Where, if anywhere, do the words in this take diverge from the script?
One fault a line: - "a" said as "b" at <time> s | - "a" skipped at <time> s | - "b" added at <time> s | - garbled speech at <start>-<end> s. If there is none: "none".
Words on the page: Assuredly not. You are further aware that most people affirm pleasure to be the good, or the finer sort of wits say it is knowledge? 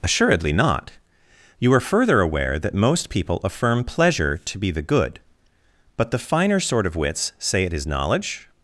- "or" said as "but" at 6.0 s